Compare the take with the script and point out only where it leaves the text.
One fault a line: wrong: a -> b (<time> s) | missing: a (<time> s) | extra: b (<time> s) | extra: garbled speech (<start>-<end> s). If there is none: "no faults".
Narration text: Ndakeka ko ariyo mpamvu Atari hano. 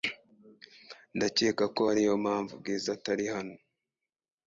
extra: Bwiza (2.6 s)